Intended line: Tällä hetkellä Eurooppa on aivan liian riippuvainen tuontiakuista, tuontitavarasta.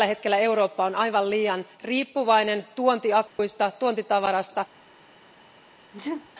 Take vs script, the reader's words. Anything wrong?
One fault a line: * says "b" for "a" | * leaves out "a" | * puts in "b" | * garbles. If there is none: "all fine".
all fine